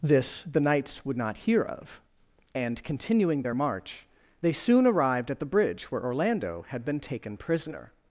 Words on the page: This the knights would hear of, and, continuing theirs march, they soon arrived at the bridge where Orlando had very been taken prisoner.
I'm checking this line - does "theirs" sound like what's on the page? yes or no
no